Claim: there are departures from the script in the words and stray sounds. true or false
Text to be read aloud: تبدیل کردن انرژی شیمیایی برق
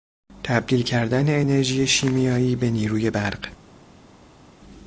true